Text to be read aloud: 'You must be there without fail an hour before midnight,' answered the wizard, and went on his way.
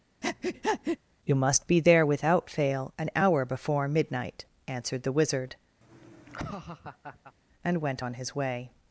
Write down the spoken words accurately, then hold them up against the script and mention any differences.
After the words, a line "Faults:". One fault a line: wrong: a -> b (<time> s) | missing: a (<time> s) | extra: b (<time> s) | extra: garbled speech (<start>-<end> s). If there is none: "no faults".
'You must be there without fail an hour before midnight,' answered the wizard, and went on his way.
Faults:
no faults